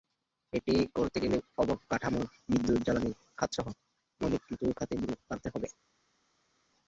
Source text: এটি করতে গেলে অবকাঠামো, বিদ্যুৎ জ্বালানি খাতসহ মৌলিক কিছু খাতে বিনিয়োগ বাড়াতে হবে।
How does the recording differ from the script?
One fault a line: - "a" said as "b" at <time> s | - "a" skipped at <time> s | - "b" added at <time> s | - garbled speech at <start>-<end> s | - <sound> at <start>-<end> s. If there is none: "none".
none